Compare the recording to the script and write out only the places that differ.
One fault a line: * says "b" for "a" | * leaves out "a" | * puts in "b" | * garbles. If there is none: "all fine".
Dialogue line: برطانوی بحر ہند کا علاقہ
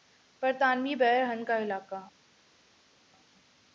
all fine